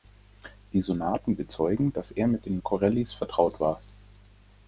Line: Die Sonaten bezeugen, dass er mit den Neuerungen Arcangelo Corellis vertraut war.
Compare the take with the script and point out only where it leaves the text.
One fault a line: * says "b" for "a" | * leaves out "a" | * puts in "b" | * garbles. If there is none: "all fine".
* leaves out "Neuerungen Arcangelo"